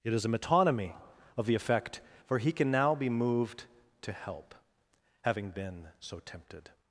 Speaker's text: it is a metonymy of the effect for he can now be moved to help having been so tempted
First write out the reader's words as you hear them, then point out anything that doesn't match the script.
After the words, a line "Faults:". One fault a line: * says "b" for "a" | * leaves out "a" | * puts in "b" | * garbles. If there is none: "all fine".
it is a metonymy of the effect for he can now be moved to help having been so tempted
Faults:
all fine